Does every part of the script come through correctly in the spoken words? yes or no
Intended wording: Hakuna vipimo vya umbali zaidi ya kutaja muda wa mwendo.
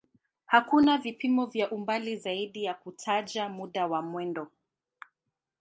yes